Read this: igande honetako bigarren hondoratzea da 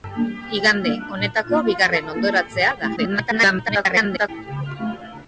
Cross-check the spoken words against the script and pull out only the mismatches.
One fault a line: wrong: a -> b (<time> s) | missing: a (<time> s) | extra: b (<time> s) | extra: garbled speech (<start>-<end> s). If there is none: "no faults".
extra: garbled speech (3.0-4.3 s)